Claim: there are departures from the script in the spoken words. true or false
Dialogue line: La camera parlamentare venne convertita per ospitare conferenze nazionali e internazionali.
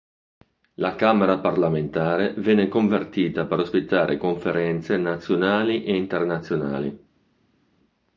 false